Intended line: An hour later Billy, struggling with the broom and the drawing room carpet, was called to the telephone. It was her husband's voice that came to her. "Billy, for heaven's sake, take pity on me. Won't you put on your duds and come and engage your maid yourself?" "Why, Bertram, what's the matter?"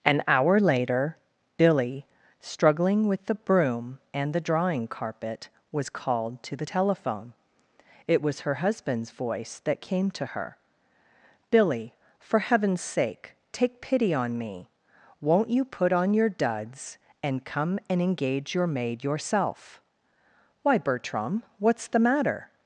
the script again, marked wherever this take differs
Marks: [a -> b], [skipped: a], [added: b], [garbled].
An hour later Billy, struggling with the broom and the drawing [skipped: room] carpet, was called to the telephone. It was her husband's voice that came to her. "Billy, for heaven's sake, take pity on me. Won't you put on your duds and come and engage your maid yourself?" "Why, Bertram, what's the matter?"